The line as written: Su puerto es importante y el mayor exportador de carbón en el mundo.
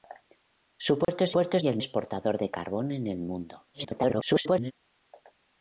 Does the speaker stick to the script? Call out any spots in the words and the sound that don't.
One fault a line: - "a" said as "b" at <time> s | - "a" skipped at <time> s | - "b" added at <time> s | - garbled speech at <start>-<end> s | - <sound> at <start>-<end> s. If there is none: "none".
- dropout at 1.0-1.1 s
- "importante" said as "puerto" at 1.3 s
- "mayor" skipped at 1.8 s
- garbled speech at 3.7-4.7 s